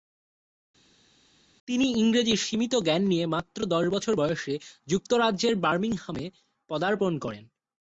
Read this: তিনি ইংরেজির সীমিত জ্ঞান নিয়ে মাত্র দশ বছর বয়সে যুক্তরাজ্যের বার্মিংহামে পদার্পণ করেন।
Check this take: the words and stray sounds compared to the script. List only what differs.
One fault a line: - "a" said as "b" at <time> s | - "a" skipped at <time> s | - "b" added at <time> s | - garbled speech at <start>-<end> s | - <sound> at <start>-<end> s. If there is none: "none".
none